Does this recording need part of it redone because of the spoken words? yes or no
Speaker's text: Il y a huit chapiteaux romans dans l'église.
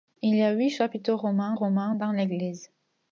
yes